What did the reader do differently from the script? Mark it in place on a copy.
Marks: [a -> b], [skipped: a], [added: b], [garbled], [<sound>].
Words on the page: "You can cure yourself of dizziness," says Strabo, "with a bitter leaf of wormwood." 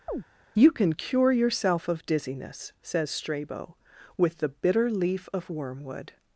[chirp] "You can cure yourself of dizziness," says Strabo, "with [a -> the] bitter leaf of wormwood."